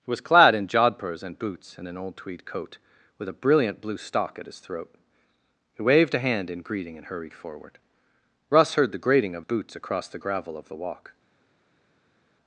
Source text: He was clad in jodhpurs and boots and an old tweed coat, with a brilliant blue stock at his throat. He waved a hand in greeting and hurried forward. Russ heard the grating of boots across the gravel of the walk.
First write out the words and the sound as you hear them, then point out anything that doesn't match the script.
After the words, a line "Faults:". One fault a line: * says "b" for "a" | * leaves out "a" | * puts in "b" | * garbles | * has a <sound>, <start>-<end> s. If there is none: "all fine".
He was clad in jodhpurs and boots and an old tweed coat, with a brilliant blue stock at his throat. He waved a hand in greeting and hurried forward. Russ heard the grating of boots across the gravel of the walk.
Faults:
all fine